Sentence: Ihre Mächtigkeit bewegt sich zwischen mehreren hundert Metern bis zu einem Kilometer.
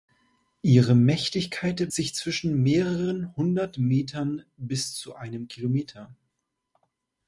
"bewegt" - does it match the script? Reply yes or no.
no